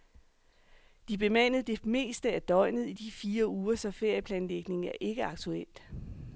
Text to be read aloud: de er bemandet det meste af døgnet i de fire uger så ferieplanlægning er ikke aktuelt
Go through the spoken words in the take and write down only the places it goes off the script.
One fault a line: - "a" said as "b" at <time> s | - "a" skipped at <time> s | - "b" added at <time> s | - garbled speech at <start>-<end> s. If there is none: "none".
none